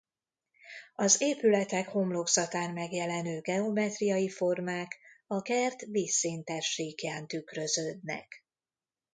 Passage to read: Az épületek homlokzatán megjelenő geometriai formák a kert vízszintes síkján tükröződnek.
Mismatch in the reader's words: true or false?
false